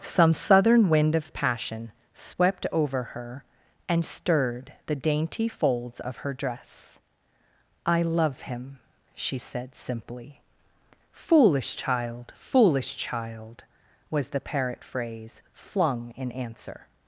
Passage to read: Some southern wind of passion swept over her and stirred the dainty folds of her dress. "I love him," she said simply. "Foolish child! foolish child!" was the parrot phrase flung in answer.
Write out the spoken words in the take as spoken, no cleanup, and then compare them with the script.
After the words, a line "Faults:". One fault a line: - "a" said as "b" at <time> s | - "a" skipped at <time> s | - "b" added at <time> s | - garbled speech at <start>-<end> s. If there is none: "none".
Some southern wind of passion swept over her and stirred the dainty folds of her dress. "I love him," she said simply. "Foolish child! foolish child!" was the parrot phrase flung in answer.
Faults:
none